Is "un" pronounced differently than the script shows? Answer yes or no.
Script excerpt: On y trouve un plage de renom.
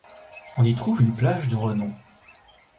yes